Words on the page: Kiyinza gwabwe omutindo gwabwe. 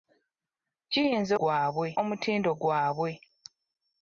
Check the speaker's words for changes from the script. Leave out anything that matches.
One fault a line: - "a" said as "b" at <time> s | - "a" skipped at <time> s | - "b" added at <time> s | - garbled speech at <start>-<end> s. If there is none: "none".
none